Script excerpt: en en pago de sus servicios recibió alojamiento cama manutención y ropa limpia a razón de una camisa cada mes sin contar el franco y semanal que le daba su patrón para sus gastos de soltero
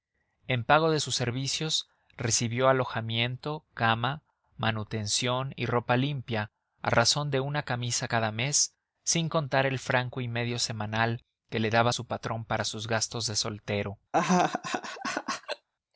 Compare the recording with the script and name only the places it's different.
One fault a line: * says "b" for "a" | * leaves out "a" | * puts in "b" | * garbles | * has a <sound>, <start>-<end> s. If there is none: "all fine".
* leaves out "en"
* puts in "medio"
* has a laugh, 14.1-15.7 s